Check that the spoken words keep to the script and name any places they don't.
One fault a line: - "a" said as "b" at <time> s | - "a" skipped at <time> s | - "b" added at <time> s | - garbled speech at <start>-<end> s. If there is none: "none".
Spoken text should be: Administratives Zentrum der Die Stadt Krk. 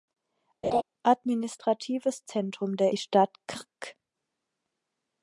none